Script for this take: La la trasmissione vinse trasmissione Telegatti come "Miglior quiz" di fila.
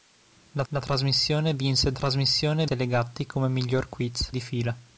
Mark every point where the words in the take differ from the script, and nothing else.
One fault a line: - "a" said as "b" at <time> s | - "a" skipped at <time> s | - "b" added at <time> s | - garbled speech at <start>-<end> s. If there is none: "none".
none